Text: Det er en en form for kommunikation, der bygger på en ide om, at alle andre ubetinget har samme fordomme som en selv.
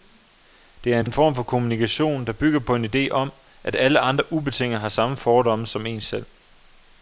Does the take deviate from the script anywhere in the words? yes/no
no